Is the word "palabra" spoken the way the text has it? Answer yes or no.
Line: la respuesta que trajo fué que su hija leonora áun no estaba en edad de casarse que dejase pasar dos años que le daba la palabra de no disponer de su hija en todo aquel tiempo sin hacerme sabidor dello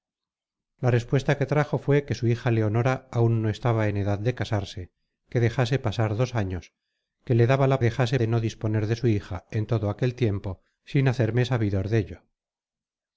no